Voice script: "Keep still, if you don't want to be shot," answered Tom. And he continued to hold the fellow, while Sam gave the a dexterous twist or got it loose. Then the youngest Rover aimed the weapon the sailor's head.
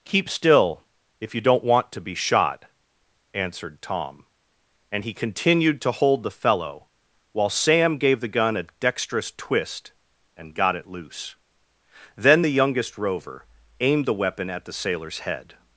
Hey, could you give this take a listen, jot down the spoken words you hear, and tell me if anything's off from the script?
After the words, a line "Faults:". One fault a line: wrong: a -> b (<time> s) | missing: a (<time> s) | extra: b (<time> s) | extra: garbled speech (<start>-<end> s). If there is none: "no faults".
"Keep still, if you don't want to be shot," answered Tom. And he continued to hold the fellow, while Sam gave the gun a dexterous twist and got it loose. Then the youngest Rover aimed the weapon at the sailor's head.
Faults:
extra: gun (8.3 s)
wrong: or -> and (10.4 s)
extra: at (14.5 s)